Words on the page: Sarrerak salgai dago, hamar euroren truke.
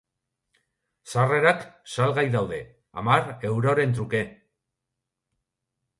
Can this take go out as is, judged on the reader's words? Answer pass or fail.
fail